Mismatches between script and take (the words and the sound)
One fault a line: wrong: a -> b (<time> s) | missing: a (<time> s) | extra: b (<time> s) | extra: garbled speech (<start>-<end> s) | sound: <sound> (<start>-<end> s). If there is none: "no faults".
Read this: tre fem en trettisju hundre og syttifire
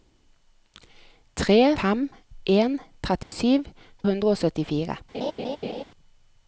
sound: dropout (3.2-3.3 s)
sound: laugh (5.1-5.8 s)